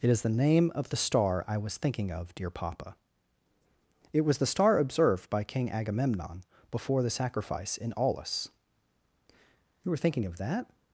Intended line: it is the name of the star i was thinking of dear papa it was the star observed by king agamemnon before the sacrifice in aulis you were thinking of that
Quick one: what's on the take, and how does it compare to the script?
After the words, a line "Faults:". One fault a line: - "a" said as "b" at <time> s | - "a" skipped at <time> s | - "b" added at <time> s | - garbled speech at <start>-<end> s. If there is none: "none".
it is the name of the star i was thinking of dear papa it was the star observed by king agamemnon before the sacrifice in aulis you were thinking of that
Faults:
none